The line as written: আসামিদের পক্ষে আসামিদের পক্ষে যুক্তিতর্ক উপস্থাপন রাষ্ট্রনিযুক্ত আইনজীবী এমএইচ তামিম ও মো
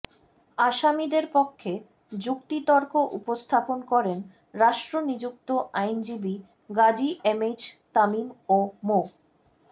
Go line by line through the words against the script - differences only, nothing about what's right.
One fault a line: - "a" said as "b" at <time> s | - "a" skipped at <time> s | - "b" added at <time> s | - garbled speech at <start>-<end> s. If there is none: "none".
- "আসামিদের পক্ষে" skipped at 1.7 s
- "করেন" added at 3.9 s
- "গাজী" added at 6.8 s